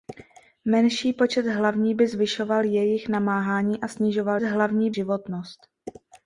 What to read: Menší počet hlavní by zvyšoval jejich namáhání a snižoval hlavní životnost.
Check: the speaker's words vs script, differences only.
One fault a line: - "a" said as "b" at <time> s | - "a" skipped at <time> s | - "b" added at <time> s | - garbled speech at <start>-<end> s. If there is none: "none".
none